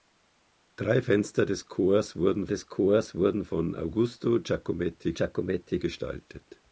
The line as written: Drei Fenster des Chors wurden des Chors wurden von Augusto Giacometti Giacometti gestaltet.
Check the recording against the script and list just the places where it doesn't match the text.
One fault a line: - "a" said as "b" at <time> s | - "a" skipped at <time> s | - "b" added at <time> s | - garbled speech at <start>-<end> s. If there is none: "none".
none